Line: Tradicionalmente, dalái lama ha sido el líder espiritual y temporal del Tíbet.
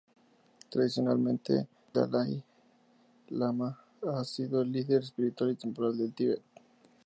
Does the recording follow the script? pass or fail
pass